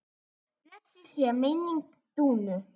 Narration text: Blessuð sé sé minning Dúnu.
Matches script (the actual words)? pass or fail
fail